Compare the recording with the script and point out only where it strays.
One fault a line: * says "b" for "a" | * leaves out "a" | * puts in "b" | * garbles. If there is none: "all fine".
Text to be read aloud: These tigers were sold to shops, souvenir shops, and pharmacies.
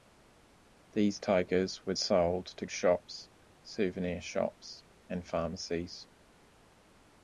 all fine